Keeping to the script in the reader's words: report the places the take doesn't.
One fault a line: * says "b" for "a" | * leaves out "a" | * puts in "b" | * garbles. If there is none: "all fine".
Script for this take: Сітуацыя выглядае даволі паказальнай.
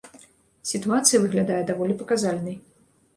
all fine